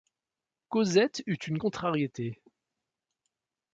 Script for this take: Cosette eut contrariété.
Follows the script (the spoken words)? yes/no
no